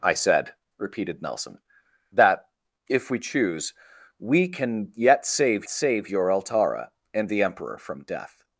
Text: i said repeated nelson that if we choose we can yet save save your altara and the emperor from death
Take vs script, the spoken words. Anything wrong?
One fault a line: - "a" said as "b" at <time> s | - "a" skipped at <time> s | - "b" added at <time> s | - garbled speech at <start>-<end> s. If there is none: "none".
none